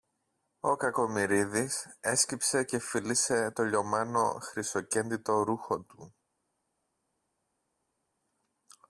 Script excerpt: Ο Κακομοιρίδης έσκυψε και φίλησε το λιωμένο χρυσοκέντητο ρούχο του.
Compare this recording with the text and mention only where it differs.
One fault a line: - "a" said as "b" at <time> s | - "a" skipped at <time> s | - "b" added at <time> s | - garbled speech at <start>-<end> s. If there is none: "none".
none